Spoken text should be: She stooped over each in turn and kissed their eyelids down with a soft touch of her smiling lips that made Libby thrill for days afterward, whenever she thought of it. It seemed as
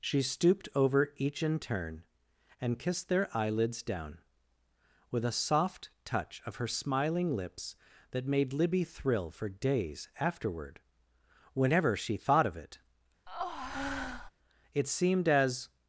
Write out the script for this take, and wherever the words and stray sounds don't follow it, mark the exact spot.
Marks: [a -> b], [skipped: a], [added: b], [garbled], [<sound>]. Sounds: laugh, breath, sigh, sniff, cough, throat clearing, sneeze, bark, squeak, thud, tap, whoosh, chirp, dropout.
She stooped over each in turn and kissed their eyelids down with a soft touch of her smiling lips that made Libby thrill for days afterward, whenever she thought of it. [breath] It seemed as